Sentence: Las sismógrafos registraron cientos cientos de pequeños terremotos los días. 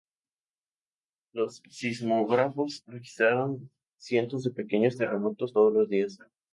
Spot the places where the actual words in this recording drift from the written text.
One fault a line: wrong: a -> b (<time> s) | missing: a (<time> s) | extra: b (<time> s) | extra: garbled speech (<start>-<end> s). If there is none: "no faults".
wrong: Las -> Los (1.3 s)
missing: cientos (4.4 s)
extra: todos (5.5 s)